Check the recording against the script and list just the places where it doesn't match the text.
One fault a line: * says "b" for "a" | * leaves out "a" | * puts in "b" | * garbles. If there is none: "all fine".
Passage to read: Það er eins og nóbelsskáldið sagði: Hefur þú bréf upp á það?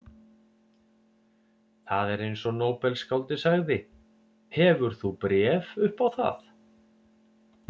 all fine